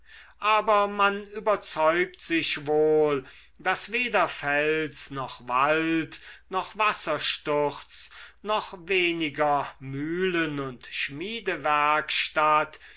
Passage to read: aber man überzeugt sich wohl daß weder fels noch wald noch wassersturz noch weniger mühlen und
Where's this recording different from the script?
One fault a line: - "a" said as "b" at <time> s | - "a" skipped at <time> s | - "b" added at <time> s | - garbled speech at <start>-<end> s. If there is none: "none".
none